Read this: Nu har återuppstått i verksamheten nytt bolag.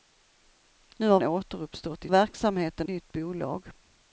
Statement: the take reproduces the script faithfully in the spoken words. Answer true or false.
true